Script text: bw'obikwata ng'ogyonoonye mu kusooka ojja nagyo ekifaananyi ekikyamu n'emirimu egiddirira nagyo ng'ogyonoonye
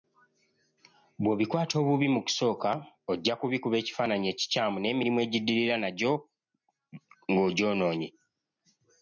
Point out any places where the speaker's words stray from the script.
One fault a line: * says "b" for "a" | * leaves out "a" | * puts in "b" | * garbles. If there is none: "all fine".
* says "obubi" for "ng'ogyonoonye"
* says "kubikuba" for "nagyo"